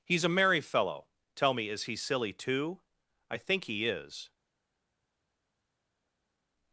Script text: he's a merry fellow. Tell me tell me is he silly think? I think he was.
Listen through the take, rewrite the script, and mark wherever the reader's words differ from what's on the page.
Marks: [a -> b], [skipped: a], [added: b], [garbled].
he's a merry fellow. Tell me [skipped: tell me] is he silly [think? -> too] I think he [was. -> is]